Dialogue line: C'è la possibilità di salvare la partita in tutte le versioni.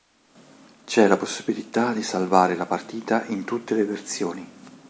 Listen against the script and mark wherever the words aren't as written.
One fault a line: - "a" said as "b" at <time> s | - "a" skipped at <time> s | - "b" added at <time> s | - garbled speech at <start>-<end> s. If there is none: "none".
none